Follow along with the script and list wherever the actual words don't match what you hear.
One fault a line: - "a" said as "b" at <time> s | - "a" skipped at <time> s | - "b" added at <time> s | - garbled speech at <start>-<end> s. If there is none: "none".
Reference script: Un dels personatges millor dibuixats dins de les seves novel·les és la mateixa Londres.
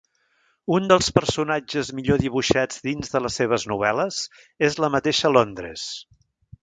none